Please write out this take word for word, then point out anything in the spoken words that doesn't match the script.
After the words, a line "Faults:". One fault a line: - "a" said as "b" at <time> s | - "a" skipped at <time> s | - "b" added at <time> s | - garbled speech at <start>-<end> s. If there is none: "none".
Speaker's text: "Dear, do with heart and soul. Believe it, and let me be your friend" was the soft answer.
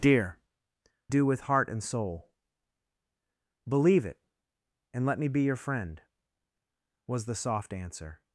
"Dear, do with heart and soul. Believe it, and let me be your friend" was the soft answer.
Faults:
none